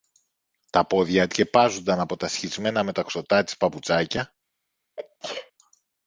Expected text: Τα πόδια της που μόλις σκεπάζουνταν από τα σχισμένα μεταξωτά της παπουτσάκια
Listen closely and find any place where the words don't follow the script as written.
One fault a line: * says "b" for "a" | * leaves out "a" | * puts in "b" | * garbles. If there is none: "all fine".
* leaves out "της που μόλις"